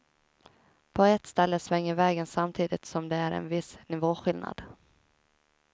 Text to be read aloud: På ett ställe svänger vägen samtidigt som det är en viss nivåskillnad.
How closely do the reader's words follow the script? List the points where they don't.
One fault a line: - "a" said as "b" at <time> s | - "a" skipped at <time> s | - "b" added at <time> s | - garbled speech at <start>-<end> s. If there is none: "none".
none